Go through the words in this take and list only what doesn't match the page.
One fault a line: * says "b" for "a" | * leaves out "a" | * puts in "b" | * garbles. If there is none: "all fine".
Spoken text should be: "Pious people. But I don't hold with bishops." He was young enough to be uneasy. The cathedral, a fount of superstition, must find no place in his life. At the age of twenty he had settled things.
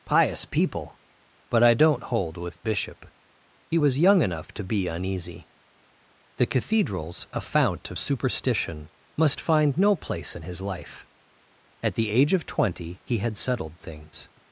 * says "bishop" for "bishops"
* says "cathedrals" for "cathedral"